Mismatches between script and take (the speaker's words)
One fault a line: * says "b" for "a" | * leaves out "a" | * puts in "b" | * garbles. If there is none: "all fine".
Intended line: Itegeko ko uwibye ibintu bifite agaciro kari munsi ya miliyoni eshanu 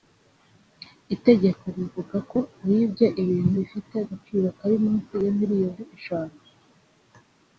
* puts in "rivuga"